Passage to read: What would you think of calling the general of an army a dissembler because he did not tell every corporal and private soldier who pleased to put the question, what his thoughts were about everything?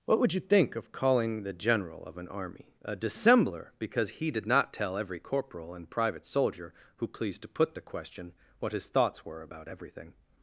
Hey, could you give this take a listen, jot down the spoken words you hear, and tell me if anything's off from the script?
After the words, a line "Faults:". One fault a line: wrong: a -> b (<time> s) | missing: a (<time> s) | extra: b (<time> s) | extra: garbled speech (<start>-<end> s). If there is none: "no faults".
What would you think of calling the general of an army a dissembler because he did not tell every corporal and private soldier who pleased to put the question, what his thoughts were about everything?
Faults:
no faults